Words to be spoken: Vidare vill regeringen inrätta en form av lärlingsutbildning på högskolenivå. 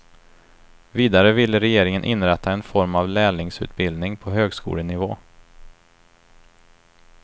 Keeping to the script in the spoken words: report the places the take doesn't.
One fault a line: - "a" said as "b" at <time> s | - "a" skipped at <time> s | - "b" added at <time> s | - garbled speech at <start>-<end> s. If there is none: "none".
none